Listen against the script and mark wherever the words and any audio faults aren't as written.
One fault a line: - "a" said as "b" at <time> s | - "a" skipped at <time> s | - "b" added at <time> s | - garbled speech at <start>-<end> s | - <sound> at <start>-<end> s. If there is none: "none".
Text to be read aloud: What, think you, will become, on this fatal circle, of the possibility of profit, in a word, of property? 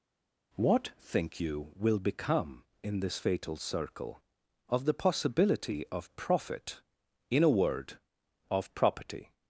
- "on" said as "in" at 2.8 s